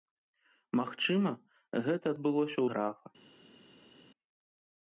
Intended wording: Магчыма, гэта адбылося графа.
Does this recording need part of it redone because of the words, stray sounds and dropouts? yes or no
no